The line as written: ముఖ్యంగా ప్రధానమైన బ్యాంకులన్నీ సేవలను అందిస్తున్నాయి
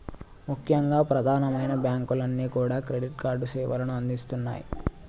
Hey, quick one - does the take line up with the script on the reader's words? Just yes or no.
no